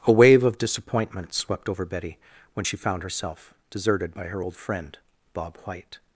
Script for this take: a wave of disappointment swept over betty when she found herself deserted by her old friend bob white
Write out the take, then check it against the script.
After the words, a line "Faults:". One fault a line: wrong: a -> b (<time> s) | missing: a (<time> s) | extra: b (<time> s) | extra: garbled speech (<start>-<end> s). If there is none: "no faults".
a wave of disappointment swept over betty when she found herself deserted by her old friend bob white
Faults:
no faults